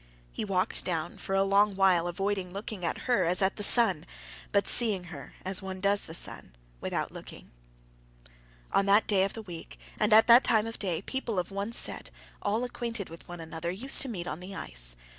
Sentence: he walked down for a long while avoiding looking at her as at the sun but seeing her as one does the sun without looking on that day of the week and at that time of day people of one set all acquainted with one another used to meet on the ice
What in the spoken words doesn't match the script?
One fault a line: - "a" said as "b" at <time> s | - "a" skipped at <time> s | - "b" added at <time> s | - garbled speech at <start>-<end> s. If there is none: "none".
none